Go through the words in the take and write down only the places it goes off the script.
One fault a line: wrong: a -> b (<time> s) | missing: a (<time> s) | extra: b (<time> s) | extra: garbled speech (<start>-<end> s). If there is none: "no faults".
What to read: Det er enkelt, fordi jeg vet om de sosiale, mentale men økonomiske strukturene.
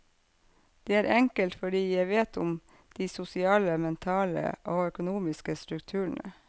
wrong: men -> og (4.6 s)